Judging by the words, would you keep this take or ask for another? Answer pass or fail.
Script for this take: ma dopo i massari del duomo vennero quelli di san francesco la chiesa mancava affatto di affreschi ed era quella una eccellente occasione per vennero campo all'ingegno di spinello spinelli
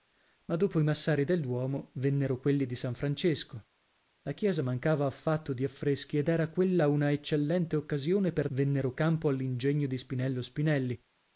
pass